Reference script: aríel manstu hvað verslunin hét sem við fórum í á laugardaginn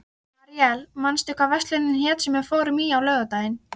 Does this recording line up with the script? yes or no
yes